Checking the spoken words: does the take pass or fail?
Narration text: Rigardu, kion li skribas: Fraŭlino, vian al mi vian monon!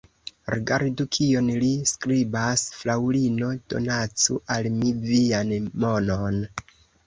fail